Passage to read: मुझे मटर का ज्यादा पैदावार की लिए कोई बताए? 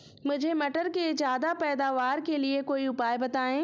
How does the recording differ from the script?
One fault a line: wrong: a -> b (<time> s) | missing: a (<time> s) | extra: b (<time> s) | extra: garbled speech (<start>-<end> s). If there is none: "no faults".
wrong: का -> के (0.9 s)
wrong: की -> के (2.2 s)
extra: उपाय (2.9 s)